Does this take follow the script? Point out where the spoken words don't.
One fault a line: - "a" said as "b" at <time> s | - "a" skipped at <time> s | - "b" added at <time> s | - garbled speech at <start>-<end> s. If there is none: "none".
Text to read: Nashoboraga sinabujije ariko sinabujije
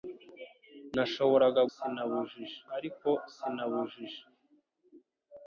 none